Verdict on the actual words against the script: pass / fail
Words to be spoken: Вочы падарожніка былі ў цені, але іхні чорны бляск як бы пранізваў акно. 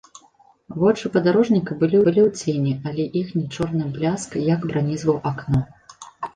fail